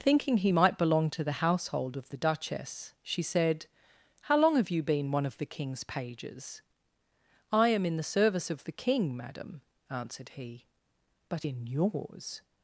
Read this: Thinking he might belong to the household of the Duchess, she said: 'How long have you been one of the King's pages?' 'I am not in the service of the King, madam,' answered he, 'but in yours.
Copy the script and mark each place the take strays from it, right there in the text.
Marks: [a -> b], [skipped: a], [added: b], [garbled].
Thinking he might belong to the household of the Duchess, she said: 'How long have you been one of the King's pages?' 'I am [skipped: not] in the service of the King, madam,' answered he, 'but in yours.